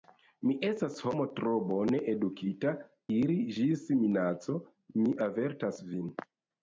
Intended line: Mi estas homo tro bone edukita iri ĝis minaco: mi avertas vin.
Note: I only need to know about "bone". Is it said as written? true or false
true